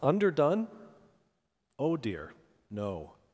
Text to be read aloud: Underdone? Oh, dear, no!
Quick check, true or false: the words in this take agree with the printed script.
true